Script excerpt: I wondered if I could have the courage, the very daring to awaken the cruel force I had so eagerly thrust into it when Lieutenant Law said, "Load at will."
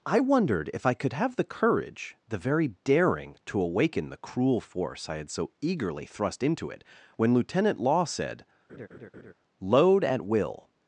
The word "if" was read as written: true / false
true